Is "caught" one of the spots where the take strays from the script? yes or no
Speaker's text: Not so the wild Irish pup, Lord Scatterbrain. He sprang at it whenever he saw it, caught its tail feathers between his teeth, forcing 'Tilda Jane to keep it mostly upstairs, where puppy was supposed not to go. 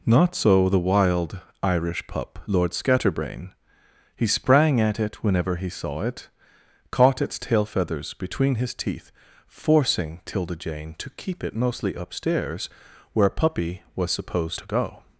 no